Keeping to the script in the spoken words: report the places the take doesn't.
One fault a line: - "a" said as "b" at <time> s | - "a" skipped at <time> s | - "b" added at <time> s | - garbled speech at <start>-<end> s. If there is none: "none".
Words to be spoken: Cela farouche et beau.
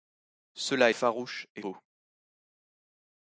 none